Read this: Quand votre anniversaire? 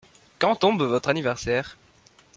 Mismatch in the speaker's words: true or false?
true